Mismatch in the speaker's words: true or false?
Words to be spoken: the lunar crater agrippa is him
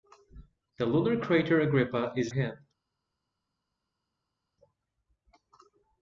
false